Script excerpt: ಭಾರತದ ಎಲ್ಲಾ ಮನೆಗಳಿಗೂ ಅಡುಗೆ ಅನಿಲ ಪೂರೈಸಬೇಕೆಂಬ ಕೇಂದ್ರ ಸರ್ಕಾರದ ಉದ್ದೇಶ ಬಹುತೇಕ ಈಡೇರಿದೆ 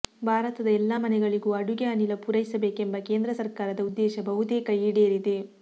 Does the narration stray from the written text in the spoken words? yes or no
no